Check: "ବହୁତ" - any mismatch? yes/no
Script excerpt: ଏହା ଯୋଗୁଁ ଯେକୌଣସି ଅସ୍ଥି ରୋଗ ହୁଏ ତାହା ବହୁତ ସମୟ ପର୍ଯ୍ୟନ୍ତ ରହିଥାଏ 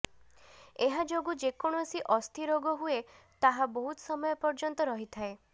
no